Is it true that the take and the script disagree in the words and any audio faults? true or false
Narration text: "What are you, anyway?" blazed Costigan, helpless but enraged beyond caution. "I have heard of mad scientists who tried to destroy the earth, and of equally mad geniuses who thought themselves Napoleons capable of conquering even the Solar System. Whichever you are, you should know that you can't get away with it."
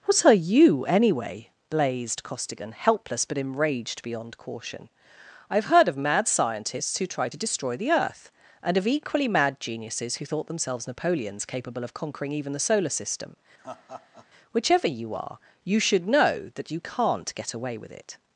true